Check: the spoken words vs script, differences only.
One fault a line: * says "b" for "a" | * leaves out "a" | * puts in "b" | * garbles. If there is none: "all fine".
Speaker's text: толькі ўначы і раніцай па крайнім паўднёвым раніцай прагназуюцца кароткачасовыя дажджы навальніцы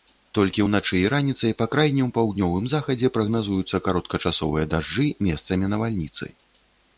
* says "захадзе" for "раніцай"
* puts in "месцамі"